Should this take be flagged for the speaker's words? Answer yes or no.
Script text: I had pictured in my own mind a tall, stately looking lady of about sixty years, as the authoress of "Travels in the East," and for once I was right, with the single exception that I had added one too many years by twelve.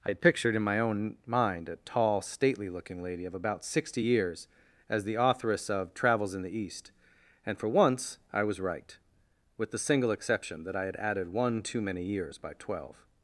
no